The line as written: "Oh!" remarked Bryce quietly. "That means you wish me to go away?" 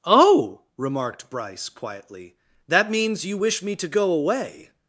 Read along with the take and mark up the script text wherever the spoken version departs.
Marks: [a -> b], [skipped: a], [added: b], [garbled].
"Oh!" remarked Bryce quietly. "That means you wish me to go away?"